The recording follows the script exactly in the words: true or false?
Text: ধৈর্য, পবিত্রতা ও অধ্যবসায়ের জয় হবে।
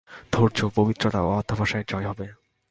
true